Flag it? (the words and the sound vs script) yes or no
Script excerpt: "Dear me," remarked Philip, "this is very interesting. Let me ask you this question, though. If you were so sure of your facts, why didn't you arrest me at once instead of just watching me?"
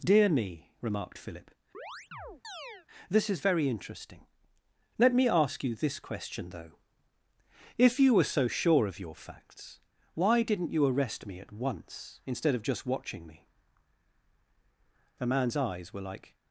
yes